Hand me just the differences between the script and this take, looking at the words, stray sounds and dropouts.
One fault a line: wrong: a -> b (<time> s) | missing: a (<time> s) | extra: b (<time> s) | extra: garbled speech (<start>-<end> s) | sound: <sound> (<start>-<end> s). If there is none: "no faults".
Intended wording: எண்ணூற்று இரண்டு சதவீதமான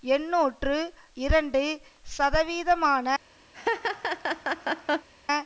sound: laugh (3.5-5.1 s)